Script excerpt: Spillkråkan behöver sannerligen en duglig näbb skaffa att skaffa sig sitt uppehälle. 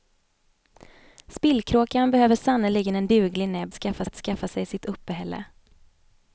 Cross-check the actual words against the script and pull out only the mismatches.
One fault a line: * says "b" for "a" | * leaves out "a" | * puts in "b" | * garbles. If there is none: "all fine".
all fine